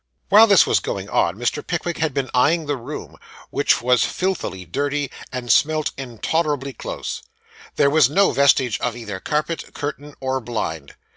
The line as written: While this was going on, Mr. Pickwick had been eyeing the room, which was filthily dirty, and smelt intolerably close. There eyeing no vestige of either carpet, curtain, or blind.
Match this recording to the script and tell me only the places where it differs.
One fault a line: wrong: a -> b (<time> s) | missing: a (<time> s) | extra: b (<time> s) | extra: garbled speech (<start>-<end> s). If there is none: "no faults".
wrong: eyeing -> was (7.9 s)